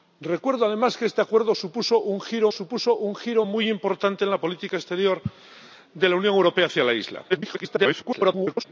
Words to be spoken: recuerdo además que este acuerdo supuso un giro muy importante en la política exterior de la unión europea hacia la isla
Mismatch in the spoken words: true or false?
true